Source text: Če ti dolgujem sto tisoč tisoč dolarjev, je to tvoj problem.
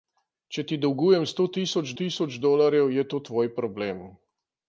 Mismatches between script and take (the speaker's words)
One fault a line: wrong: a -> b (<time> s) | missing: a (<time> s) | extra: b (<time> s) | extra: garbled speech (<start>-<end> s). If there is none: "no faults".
no faults